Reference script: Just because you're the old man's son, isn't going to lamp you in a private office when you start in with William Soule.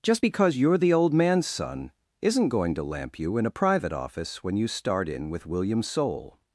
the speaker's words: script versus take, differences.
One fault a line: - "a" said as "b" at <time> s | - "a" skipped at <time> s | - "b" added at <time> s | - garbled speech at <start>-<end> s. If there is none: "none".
none